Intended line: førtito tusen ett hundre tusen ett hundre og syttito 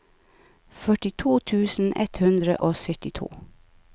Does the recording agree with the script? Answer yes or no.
no